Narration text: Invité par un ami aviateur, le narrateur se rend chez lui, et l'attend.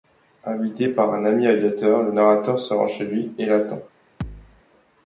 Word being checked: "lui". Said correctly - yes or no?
yes